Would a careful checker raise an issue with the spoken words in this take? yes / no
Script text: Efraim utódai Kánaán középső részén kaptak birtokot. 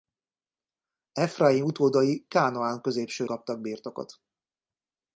yes